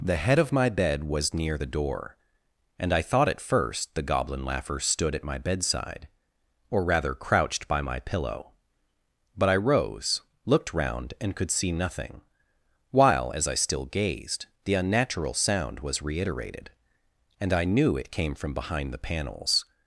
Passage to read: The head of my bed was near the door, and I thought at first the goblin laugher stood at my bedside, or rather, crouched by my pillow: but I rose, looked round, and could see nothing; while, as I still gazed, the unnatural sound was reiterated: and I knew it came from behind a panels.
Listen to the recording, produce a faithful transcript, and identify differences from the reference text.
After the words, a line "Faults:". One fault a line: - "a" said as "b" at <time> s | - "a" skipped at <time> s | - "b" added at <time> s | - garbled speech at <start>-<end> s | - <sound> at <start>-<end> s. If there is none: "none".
The head of my bed was near the door, and I thought at first the goblin laugher stood at my bedside, or rather, crouched by my pillow: but I rose, looked round, and could see nothing; while, as I still gazed, the unnatural sound was reiterated: and I knew it came from behind the panels.
Faults:
- "a" said as "the" at 18.9 s